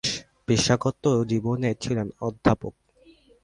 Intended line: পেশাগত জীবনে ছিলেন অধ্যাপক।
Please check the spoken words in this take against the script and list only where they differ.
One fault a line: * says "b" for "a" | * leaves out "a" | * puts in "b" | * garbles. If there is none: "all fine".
all fine